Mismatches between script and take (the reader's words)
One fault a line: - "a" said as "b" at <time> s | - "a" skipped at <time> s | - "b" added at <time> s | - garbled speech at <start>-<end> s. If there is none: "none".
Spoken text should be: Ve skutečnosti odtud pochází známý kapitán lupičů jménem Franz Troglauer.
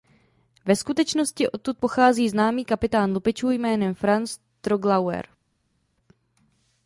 none